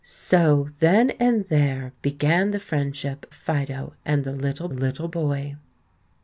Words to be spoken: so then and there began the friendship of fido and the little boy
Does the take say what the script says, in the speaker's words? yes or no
no